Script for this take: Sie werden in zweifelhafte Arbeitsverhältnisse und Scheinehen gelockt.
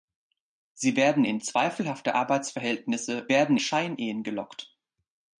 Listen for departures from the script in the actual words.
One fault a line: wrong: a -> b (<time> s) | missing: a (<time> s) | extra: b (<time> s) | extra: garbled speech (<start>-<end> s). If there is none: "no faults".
wrong: und -> werden (3.3 s)